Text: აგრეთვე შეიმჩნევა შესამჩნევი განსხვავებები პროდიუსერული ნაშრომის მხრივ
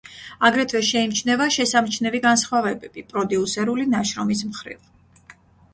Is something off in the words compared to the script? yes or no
no